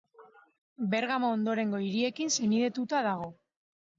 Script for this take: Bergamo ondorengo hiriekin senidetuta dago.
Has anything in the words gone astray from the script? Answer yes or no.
no